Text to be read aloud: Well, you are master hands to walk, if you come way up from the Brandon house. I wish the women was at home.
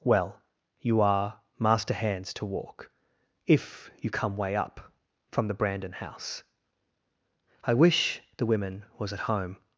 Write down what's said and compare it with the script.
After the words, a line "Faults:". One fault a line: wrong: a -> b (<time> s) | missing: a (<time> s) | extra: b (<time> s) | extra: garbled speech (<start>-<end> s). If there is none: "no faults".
Well, you are master hands to walk, if you come way up from the Brandon house. I wish the women was at home.
Faults:
no faults